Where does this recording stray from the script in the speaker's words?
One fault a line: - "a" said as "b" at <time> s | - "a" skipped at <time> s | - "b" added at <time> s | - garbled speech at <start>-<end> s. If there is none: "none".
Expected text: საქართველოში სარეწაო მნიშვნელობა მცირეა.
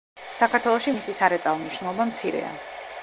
- "მისი" added at 0.9 s